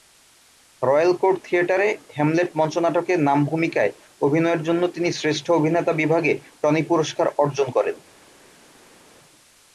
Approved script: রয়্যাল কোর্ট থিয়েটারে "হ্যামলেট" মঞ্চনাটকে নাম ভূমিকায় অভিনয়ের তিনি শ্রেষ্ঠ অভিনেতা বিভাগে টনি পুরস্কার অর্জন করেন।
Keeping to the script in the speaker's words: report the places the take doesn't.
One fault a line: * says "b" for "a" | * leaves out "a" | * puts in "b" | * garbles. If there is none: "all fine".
* puts in "জন্য"